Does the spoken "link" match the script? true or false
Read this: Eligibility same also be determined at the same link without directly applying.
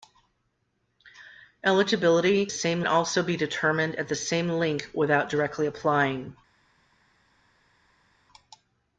true